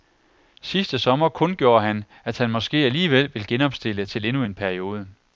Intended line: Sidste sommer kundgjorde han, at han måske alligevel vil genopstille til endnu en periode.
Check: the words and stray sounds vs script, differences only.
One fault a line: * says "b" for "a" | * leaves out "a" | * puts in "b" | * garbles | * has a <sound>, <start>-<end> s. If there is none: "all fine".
all fine